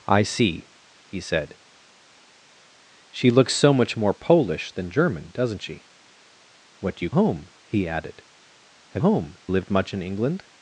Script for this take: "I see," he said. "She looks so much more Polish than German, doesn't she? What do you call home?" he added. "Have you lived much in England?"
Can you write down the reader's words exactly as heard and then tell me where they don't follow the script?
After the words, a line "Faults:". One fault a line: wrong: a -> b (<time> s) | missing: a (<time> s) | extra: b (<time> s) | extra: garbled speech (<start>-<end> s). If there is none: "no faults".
"I see," he said. "She looks so much more Polish than German, doesn't she? What do you home?" he added. "Have home lived much in England?"
Faults:
missing: call (7.1 s)
wrong: you -> home (9.0 s)